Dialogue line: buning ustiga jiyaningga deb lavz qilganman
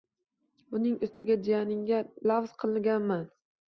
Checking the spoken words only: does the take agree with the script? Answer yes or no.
no